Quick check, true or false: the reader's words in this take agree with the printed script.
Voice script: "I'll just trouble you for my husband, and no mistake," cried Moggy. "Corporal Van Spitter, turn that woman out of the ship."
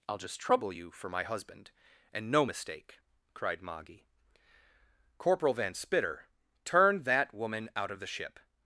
true